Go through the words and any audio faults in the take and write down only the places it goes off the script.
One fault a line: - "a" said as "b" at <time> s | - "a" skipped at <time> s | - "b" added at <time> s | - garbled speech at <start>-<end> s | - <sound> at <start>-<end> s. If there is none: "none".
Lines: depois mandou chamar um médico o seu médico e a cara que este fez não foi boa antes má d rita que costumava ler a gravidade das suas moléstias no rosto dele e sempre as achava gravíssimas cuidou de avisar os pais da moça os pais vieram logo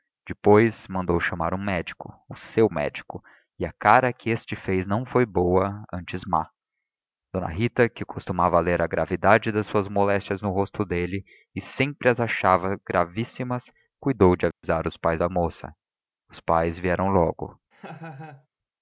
- dropout at 14.5-14.6 s
- laugh at 17.7-18.5 s